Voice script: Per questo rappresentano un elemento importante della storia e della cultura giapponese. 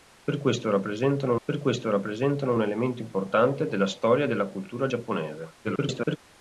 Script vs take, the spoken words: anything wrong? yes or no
yes